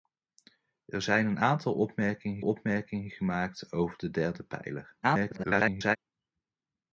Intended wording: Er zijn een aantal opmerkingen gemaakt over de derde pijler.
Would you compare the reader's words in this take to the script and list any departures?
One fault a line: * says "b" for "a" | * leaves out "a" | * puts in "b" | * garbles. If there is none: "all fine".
* puts in "opmerkingen"
* garbles